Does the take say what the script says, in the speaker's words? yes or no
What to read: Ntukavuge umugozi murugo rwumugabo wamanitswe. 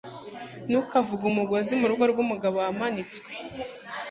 yes